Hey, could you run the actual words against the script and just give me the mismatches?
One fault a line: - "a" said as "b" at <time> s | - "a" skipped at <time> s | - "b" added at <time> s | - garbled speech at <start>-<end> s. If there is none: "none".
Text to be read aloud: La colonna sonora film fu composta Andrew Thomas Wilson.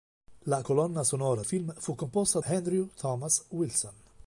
none